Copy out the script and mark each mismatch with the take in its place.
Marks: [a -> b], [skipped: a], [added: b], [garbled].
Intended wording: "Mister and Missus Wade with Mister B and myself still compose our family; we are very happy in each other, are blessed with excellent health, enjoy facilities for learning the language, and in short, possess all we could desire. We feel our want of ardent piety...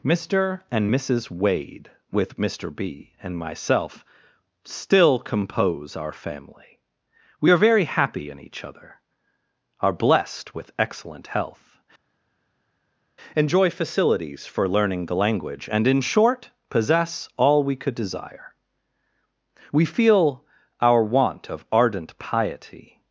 "Mister and Missus Wade with Mister B and myself still compose our family; we are very happy in each other, are blessed with excellent health, enjoy facilities for learning the language, and in short, possess all we could desire. We feel our want of ardent piety...